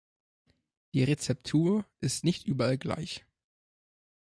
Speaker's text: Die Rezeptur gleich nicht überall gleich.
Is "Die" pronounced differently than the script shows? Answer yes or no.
no